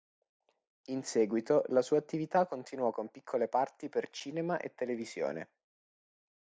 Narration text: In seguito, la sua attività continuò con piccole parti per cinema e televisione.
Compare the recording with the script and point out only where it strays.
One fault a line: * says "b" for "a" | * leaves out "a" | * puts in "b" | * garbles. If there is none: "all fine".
all fine